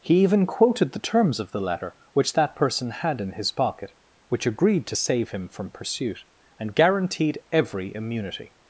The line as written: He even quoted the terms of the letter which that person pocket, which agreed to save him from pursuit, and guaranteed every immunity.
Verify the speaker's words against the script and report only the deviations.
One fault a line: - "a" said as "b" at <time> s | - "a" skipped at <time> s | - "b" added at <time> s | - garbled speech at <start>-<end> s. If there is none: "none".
- "had in his" added at 2.9 s